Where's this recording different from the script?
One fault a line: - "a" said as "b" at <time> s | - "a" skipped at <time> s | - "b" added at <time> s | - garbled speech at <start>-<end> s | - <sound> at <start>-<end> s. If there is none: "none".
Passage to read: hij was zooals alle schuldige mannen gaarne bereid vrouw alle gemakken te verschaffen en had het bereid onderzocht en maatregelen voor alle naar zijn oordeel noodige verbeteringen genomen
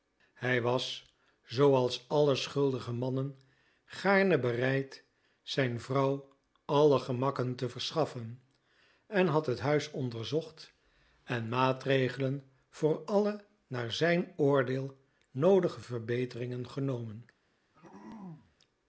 - "zijn" added at 5.4 s
- "bereid" said as "huis" at 9.6 s
- throat clearing at 17.7-18.6 s